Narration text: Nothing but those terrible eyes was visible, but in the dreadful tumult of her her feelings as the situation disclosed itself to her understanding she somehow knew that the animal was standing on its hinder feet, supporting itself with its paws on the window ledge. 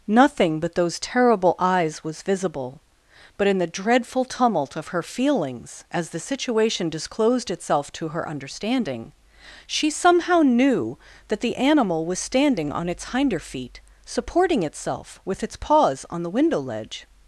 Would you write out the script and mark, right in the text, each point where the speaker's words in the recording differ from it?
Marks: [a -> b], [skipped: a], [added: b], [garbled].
Nothing but those terrible eyes was visible, but in the dreadful tumult of her [skipped: her] feelings as the situation disclosed itself to her understanding she somehow knew that the animal was standing on its hinder feet, supporting itself with its paws on the window ledge.